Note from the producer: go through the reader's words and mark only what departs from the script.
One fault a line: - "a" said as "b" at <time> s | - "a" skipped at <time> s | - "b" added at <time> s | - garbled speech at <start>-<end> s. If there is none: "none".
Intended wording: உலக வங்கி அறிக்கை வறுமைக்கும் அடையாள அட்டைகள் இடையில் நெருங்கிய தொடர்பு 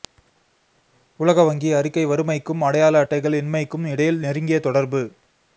- "இன்மைக்கும்" added at 3.4 s